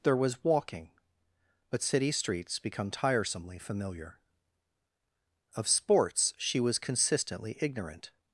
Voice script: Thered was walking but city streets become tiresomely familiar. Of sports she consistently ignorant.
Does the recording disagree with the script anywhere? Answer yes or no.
yes